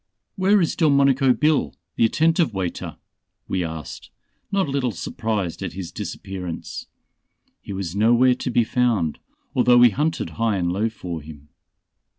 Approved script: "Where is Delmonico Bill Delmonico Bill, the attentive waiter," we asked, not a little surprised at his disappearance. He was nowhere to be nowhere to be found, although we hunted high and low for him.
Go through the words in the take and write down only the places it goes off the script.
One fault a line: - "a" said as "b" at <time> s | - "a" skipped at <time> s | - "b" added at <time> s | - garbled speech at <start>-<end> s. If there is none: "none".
- "Delmonico Bill" skipped at 1.8 s
- "nowhere to be" skipped at 8.6 s